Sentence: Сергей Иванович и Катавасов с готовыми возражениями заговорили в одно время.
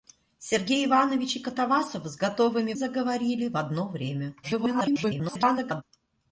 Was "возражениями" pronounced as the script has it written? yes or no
no